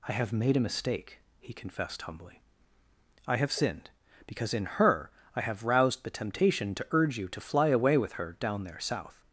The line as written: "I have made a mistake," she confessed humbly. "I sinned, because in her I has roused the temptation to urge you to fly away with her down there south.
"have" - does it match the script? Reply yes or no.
yes